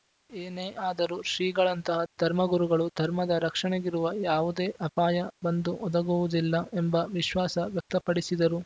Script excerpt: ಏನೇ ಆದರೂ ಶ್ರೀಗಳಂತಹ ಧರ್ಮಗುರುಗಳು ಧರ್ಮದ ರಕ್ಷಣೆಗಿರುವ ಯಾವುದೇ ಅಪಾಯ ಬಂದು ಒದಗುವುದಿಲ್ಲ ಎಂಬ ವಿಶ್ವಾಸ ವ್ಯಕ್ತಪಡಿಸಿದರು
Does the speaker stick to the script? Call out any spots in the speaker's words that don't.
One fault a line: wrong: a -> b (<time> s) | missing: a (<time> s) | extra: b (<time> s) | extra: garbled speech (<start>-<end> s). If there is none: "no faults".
no faults